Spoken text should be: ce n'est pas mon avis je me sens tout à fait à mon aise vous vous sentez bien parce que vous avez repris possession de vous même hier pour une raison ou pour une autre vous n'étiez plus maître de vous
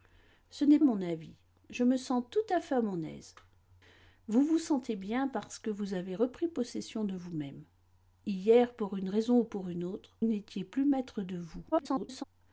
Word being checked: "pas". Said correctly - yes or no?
no